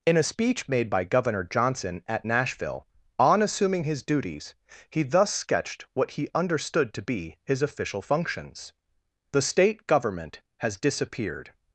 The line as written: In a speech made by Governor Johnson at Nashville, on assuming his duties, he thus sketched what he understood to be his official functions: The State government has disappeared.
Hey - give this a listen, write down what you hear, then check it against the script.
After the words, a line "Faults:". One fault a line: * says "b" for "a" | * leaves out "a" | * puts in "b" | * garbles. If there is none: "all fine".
In a speech made by Governor Johnson at Nashville, on assuming his duties, he thus sketched what he understood to be his official functions: The State government has disappeared.
Faults:
all fine